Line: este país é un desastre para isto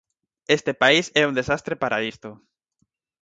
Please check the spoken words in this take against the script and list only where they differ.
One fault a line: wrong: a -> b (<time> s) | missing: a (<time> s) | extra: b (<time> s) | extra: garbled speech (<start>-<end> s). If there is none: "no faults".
no faults